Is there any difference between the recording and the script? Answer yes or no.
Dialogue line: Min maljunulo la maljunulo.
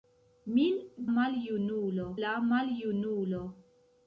no